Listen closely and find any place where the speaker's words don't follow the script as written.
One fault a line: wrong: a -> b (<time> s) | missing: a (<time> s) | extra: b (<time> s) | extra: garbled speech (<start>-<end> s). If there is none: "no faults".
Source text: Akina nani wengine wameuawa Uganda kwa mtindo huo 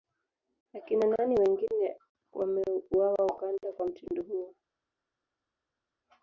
no faults